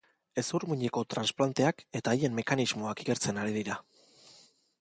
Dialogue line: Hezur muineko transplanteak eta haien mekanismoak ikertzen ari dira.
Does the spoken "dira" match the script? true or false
true